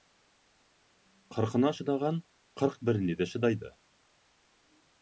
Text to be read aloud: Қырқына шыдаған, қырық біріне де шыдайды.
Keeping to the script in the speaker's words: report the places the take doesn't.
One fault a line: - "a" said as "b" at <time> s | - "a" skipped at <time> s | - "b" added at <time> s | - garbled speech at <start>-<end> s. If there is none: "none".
none